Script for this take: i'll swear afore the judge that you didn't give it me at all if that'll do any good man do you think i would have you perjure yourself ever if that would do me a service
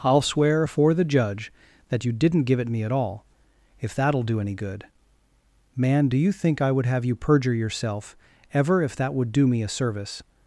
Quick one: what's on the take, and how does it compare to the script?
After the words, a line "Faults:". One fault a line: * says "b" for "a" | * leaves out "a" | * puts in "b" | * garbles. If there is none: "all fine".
i'll swear afore the judge that you didn't give it me at all if that'll do any good man do you think i would have you perjure yourself ever if that would do me a service
Faults:
all fine